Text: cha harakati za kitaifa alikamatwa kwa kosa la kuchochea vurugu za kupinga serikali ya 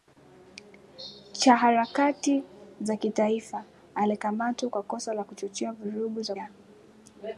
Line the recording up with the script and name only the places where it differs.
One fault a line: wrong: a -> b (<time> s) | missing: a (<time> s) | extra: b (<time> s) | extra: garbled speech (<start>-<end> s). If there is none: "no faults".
missing: kupinga serikali (6.3 s)